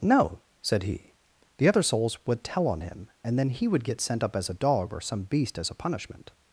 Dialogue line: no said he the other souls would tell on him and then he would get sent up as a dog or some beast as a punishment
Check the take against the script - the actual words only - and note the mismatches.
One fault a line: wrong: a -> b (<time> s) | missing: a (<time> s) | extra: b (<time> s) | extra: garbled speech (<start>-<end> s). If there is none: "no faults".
no faults